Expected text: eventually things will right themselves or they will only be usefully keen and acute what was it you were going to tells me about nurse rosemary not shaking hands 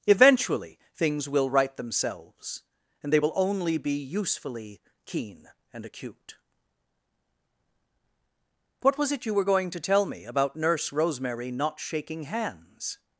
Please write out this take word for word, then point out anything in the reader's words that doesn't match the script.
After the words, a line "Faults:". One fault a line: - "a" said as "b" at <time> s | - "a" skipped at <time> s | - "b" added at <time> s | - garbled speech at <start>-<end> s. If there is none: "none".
eventually things will right themselves and they will only be usefully keen and acute what was it you were going to tell me about nurse rosemary not shaking hands
Faults:
- "or" said as "and" at 3.0 s
- "tells" said as "tell" at 9.8 s